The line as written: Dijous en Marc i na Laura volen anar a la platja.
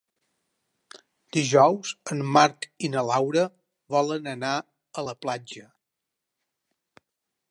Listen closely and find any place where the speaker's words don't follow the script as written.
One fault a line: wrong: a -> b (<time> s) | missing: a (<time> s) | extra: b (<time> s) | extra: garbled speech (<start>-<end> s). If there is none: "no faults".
no faults